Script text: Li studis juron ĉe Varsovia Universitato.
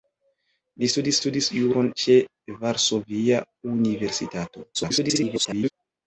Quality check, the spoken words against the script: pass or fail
fail